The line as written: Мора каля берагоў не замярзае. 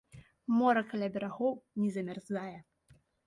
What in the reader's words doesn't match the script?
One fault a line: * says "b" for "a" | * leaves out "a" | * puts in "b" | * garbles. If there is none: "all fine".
all fine